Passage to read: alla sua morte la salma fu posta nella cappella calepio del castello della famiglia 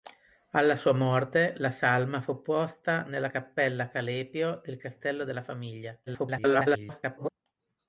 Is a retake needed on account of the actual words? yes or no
yes